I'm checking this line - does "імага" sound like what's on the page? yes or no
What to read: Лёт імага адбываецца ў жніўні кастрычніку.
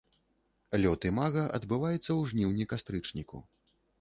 yes